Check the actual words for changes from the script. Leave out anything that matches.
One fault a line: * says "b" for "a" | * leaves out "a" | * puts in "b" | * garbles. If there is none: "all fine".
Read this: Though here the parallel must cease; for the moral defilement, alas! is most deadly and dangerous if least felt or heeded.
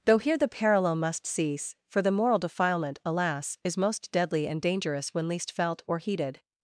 * says "when" for "if"